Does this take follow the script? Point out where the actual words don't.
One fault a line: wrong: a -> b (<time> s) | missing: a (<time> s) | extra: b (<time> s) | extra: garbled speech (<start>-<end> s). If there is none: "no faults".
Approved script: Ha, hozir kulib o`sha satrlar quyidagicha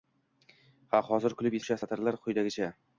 no faults